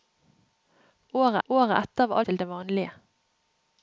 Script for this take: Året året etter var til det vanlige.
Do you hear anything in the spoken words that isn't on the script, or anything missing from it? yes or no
no